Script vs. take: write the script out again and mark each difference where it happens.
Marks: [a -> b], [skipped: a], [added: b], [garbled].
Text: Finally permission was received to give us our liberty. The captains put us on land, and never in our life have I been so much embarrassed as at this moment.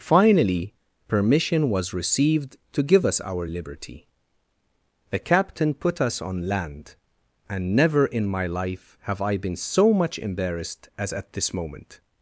Finally permission was received to give us our liberty. The [captains -> captain] put us on land, and never in [our -> my] life have I been so much embarrassed as at this moment.